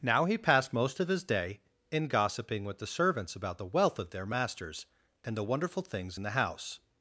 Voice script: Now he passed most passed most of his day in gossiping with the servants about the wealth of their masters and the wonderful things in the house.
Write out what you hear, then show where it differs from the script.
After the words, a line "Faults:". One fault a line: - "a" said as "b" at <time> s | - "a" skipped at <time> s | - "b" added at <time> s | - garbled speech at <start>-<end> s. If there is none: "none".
Now he passed most of his day in gossiping with the servants about the wealth of their masters and the wonderful things in the house.
Faults:
- "passed most" skipped at 1.0 s